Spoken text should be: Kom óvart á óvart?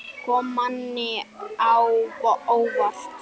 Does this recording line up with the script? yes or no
no